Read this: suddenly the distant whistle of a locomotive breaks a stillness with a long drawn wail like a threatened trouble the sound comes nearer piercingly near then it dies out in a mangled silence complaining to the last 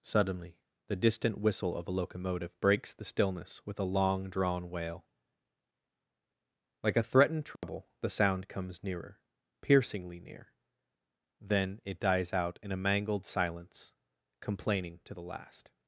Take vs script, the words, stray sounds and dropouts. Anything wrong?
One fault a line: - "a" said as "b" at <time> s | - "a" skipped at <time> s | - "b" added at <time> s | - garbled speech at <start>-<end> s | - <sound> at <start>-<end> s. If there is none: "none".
- "a" said as "the" at 2.9 s
- dropout at 7.6-7.6 s